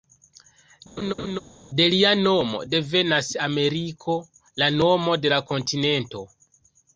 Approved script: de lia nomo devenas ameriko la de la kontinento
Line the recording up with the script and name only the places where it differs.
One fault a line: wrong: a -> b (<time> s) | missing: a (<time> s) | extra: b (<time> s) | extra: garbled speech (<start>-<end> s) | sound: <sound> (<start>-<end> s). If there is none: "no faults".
sound: laugh (1.0-1.4 s)
extra: nomo (4.8 s)